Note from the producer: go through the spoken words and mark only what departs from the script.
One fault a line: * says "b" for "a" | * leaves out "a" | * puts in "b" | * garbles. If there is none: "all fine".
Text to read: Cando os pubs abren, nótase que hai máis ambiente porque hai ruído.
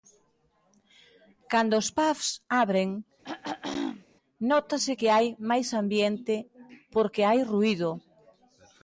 all fine